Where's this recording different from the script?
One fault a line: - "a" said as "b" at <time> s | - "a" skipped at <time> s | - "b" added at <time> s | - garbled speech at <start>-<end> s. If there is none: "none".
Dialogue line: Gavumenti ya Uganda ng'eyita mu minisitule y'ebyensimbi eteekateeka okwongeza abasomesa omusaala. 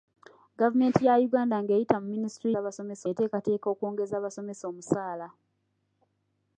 - "y'ebyensimbi" said as "abasomesa" at 2.6 s